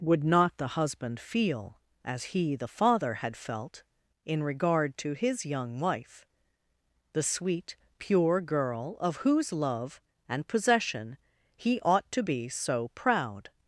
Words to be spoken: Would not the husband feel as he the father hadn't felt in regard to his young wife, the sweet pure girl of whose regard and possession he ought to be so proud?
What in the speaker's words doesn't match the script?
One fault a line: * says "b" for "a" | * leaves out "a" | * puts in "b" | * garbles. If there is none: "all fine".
* says "had" for "hadn't"
* says "love" for "regard"